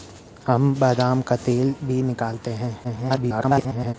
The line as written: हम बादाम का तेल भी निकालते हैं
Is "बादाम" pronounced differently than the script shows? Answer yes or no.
no